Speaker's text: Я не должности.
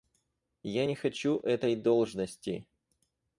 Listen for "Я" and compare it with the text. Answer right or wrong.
right